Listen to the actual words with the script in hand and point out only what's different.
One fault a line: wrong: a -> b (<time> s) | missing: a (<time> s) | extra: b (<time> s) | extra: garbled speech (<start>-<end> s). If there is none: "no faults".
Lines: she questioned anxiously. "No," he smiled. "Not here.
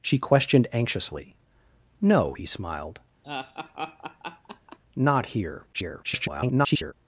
extra: garbled speech (5.7-6.9 s)